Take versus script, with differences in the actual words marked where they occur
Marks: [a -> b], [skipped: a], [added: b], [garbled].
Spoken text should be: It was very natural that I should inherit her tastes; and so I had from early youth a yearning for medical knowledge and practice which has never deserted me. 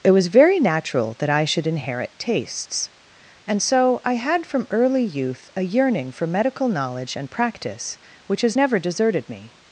It was very natural that I should inherit [skipped: her] tastes; and so I had from early youth a yearning for medical knowledge and practice which has never deserted me.